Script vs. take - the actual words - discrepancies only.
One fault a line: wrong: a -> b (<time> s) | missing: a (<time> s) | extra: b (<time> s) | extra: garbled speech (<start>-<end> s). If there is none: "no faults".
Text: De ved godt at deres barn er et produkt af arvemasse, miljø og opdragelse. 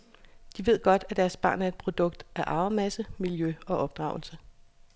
no faults